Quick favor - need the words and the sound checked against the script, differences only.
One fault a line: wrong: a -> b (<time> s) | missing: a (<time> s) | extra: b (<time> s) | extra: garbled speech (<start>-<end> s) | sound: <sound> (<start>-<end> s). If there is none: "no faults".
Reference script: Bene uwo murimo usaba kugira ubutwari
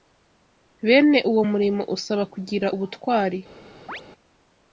sound: chirp (3.9-4.0 s)